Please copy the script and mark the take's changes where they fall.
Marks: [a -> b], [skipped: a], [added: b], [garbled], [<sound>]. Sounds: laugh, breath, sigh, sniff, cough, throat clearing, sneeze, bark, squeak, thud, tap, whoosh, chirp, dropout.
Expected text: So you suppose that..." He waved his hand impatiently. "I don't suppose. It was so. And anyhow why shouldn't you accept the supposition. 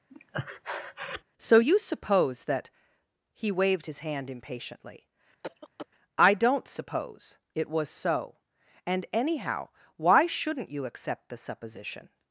[breath] So you suppose that..." He waved his hand impatiently. [cough] "I don't suppose. It was so. And anyhow why shouldn't you accept the supposition.